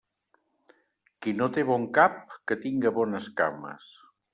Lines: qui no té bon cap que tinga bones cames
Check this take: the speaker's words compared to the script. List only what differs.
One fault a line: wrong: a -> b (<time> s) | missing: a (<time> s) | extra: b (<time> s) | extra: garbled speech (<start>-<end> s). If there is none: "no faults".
no faults